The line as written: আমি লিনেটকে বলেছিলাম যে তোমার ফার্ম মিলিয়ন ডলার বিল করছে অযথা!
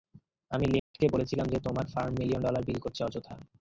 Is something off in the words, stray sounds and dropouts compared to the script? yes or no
yes